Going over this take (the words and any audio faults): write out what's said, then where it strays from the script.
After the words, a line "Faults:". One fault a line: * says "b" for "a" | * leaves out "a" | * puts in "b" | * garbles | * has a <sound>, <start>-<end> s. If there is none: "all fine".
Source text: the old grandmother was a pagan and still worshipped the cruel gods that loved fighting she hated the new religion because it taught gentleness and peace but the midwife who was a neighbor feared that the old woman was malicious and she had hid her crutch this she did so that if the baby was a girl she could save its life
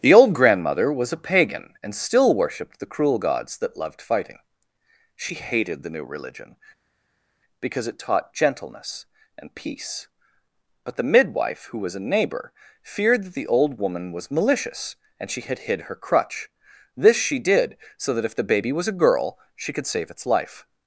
the old grandmother was a pagan and still worshipped the cruel gods that loved fighting she hated the new religion because it taught gentleness and peace but the midwife who was a neighbor feared that the old woman was malicious and she had hid her crutch this she did so that if the baby was a girl she could save its life
Faults:
all fine